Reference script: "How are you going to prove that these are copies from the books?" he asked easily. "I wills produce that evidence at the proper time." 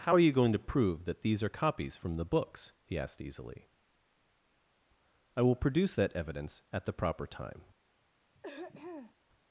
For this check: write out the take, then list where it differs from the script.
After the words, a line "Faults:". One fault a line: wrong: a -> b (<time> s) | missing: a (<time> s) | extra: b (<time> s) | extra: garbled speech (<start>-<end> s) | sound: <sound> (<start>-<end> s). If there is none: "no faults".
"How are you going to prove that these are copies from the books?" he asked easily. "I will produce that evidence at the proper time."
Faults:
wrong: wills -> will (5.4 s)
sound: throat clearing (8.4-9.2 s)